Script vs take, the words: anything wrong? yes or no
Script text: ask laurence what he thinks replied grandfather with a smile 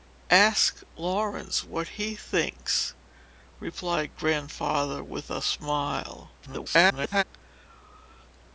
yes